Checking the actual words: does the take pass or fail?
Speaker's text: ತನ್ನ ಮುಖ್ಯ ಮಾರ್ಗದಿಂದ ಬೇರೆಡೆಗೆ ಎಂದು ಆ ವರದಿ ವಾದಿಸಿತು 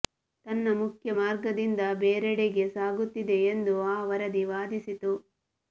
fail